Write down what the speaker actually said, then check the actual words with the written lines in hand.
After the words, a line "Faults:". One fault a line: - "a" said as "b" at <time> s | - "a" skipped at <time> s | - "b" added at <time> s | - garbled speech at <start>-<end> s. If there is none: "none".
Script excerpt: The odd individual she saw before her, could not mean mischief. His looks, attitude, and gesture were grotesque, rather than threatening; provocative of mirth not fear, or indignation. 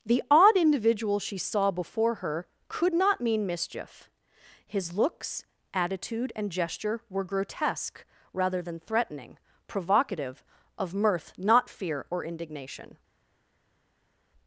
The odd individual she saw before her, could not mean mischief. His looks, attitude, and gesture were grotesque, rather than threatening; provocative of mirth not fear, or indignation.
Faults:
none